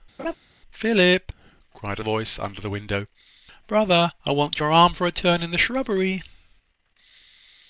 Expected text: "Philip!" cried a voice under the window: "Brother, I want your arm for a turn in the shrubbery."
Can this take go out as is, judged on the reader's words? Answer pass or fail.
pass